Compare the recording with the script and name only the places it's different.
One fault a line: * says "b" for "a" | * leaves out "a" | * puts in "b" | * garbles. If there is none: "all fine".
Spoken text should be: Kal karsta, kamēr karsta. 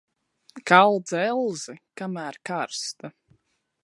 * says "dzelzi" for "karsta"